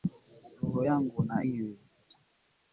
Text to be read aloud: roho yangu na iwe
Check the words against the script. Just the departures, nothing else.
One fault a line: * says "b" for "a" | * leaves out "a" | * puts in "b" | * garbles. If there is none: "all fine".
all fine